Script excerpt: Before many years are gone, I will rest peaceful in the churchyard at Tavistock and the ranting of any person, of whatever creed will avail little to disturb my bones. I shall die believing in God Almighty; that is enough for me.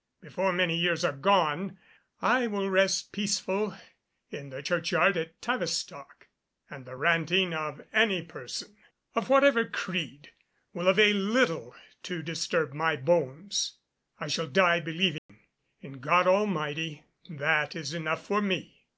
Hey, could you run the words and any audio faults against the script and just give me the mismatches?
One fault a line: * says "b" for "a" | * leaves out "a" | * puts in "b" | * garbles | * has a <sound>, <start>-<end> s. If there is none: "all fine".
* has a dropout, 15.2-15.3 s